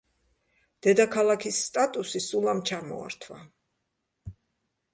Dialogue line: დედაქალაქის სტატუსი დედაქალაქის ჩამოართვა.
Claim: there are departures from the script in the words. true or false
true